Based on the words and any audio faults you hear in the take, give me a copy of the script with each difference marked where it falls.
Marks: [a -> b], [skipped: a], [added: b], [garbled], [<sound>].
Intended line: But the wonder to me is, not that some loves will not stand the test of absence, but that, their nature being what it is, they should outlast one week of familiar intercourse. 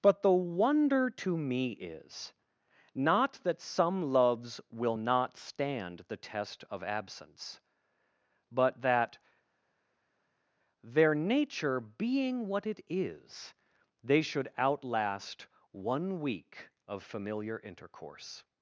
But the wonder to me is, not that some loves will not stand the test of absence, but that, their nature being what it is, they should outlast one week of familiar intercourse.